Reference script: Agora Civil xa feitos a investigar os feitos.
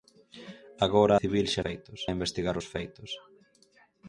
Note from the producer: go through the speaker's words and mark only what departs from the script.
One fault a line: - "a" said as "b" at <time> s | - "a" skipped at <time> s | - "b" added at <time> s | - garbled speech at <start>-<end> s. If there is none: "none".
none